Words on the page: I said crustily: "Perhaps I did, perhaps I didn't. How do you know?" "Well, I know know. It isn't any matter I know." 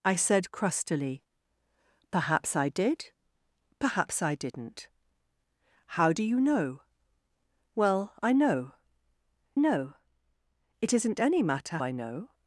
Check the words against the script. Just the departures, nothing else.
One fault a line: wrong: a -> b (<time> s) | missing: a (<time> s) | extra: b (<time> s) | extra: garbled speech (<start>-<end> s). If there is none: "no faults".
no faults